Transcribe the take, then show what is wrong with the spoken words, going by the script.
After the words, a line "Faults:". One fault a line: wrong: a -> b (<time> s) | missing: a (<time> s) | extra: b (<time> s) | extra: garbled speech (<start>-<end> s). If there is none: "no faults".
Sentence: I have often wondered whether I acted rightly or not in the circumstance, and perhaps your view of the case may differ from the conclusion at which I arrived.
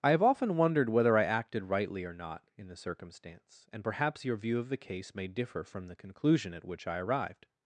I have often wondered whether I acted rightly or not in the circumstance, and perhaps your view of the case may differ from the conclusion at which I arrived.
Faults:
no faults